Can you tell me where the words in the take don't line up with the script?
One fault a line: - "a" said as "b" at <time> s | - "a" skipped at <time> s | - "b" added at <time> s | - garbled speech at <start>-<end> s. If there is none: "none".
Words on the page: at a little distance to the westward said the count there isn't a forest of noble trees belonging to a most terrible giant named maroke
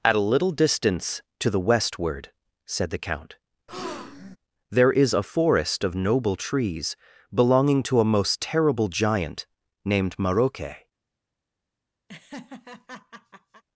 - "isn't" said as "is" at 4.9 s